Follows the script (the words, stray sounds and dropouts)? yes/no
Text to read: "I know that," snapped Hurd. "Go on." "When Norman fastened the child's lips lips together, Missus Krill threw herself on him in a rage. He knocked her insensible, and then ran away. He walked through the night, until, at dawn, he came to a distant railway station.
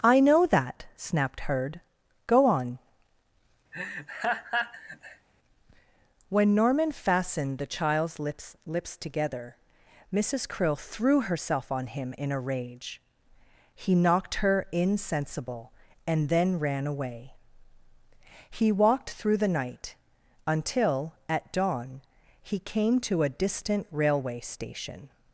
no